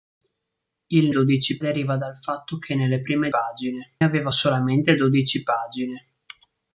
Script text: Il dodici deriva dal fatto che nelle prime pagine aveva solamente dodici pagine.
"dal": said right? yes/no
yes